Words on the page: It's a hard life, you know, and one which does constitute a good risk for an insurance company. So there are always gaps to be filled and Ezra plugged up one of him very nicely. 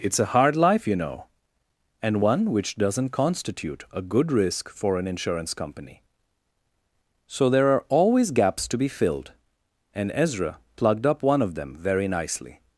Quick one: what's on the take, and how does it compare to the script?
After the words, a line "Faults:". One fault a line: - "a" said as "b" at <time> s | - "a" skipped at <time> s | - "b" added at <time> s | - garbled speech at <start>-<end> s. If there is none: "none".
It's a hard life, you know, and one which doesn't constitute a good risk for an insurance company. So there are always gaps to be filled and Ezra plugged up one of them very nicely.
Faults:
- "does" said as "doesn't" at 2.8 s
- "him" said as "them" at 11.5 s